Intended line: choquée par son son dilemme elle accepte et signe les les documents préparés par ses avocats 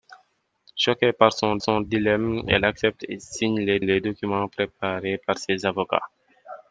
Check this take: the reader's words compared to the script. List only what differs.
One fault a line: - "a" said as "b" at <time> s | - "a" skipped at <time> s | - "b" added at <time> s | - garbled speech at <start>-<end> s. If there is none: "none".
none